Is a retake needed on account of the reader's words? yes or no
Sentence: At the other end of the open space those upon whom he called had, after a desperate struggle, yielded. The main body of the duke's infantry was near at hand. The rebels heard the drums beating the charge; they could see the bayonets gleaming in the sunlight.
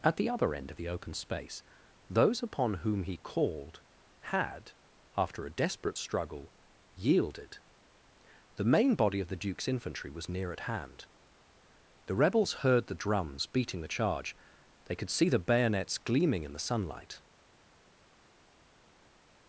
no